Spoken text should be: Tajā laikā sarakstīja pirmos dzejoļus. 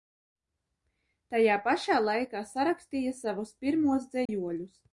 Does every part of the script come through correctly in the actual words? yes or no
no